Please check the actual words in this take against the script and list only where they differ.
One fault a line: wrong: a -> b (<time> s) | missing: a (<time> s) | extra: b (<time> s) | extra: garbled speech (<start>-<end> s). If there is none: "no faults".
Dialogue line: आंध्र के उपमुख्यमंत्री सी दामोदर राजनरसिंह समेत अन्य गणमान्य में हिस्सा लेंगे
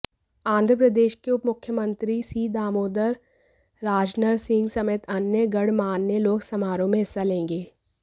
extra: प्रदेश (0.8 s)
extra: लोग समारोह (6.2 s)